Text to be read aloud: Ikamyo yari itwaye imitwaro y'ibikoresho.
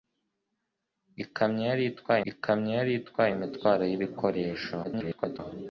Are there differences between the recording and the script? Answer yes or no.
yes